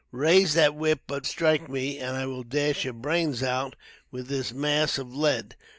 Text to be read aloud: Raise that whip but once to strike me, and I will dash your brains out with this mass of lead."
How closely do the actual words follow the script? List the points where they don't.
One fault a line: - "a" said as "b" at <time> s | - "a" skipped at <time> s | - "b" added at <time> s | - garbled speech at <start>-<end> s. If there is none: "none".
- "once to" skipped at 1.3 s